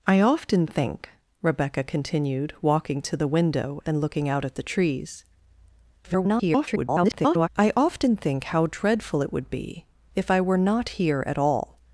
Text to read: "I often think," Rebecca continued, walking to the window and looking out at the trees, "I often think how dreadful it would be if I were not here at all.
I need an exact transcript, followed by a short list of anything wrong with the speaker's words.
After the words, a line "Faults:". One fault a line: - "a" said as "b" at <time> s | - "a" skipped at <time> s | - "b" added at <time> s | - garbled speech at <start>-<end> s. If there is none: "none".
"I often think," Rebecca continued, walking to the window and looking out at the trees, [garbled] "I often think how dreadful it would be if I were not here at all.
Faults:
- garbled speech at 6.0-7.5 s